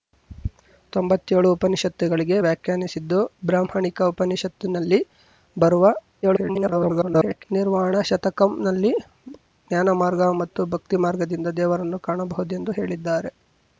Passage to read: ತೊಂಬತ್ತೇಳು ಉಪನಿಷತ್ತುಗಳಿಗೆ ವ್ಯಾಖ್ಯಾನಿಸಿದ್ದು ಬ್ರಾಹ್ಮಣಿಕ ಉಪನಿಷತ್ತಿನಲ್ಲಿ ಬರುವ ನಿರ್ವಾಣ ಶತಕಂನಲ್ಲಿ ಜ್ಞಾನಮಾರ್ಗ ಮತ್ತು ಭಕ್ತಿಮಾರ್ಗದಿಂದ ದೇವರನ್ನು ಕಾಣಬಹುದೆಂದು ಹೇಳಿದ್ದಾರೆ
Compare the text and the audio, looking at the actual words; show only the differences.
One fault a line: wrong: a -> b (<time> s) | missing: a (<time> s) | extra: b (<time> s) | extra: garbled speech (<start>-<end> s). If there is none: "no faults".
extra: garbled speech (6.2-7.5 s)